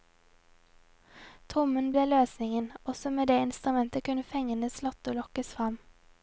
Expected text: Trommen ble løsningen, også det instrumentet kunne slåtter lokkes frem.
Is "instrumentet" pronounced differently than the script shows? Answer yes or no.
no